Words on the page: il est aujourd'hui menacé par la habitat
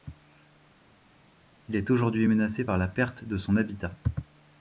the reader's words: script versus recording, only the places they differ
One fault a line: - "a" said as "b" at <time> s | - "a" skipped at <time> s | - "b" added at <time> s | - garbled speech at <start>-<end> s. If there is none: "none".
- "perte de son" added at 2.9 s